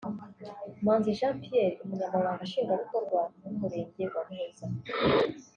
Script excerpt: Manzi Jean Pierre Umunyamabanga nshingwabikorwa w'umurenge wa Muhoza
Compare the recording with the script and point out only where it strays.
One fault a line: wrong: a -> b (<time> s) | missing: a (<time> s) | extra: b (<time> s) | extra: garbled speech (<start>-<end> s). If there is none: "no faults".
no faults